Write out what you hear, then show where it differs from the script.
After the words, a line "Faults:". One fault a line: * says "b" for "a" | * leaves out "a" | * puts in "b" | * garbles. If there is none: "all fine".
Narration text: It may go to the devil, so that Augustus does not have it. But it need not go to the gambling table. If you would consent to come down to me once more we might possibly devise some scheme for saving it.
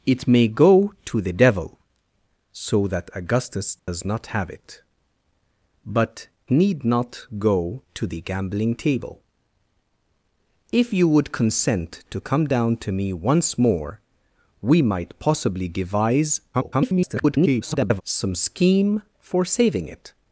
It may go to the devil, so that Augustus does not have it. But need not go to the gambling table. If you would consent to come down to me once more we might possibly devise [garbled] some scheme for saving it.
Faults:
* leaves out "it"
* garbles